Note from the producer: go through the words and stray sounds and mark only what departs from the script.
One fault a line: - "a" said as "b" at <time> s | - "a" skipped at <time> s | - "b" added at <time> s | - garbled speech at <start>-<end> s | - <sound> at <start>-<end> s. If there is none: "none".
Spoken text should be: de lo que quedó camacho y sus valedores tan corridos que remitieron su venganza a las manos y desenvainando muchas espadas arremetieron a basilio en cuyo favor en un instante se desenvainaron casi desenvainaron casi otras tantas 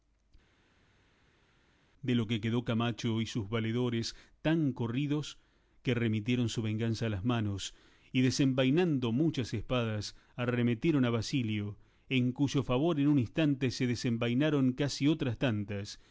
- "desenvainaron casi" skipped at 15.1 s